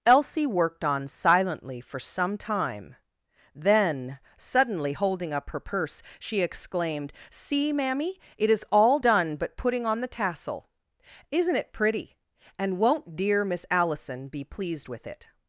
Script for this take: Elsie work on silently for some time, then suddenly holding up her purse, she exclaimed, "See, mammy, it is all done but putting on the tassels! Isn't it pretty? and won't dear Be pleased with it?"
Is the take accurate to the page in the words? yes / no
no